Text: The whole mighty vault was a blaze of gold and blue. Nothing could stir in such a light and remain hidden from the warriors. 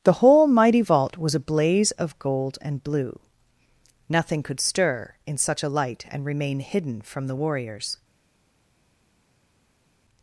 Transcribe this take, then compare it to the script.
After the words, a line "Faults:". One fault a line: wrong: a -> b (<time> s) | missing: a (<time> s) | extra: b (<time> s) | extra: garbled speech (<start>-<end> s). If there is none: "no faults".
The whole mighty vault was a blaze of gold and blue. Nothing could stir in such a light and remain hidden from the warriors.
Faults:
no faults